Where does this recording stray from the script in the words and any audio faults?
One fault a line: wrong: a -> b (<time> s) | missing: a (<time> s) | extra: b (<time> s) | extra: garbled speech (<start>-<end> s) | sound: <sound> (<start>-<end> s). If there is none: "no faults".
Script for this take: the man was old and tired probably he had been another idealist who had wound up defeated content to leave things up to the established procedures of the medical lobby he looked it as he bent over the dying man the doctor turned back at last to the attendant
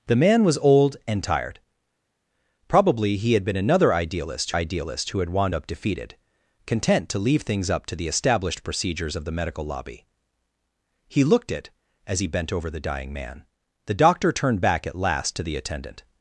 extra: idealist (4.5 s)